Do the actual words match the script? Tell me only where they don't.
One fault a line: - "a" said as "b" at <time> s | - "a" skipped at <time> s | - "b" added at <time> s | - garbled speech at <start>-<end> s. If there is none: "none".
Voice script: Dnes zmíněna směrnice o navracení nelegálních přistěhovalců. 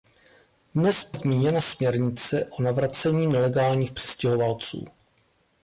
none